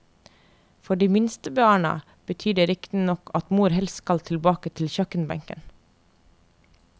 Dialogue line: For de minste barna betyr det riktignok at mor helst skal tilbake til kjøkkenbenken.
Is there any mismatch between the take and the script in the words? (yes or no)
no